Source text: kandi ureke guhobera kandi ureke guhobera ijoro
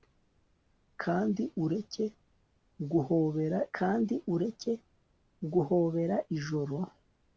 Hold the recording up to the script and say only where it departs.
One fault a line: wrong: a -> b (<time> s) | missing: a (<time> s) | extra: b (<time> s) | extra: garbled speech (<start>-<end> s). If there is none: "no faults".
no faults